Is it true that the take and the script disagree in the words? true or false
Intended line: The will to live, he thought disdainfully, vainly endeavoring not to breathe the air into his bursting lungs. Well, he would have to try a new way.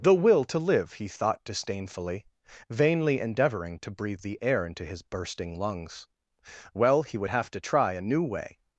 true